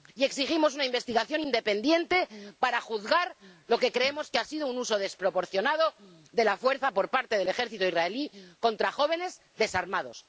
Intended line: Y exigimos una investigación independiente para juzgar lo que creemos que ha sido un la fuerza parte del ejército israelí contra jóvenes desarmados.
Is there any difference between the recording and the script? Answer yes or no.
yes